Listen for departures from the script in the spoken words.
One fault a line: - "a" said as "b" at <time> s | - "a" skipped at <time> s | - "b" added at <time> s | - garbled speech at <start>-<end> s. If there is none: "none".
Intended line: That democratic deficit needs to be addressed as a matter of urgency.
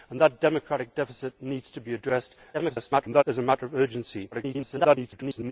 - garbled speech at 2.5-3.2 s
- garbled speech at 4.3-5.5 s